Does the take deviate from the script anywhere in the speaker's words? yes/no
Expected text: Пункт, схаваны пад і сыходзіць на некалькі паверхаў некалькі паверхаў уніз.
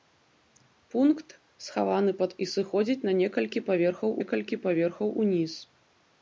no